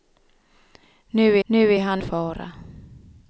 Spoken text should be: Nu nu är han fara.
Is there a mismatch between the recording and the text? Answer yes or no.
no